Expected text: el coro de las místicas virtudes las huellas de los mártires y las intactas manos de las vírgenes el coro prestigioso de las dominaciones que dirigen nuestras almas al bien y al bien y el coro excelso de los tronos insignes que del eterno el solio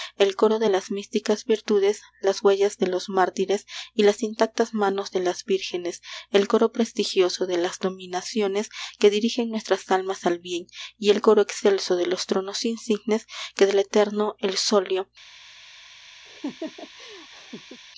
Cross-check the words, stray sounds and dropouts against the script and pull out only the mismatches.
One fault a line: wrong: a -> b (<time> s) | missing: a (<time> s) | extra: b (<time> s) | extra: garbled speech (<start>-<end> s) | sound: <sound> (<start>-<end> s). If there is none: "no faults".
missing: al bien y (11.1 s)
sound: laugh (16.3-17.8 s)